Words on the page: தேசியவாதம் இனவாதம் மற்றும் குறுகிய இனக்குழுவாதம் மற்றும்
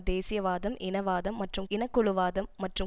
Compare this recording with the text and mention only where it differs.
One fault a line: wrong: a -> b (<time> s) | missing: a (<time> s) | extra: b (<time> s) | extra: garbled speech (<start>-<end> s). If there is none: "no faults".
missing: குறுகிய (1.7 s)